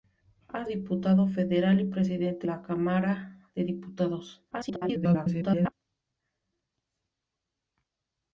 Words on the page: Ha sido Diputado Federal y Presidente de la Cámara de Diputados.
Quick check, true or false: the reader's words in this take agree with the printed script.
false